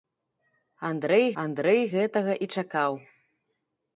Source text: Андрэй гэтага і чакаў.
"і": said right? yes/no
yes